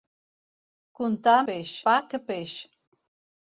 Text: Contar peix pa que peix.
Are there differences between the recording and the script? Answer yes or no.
no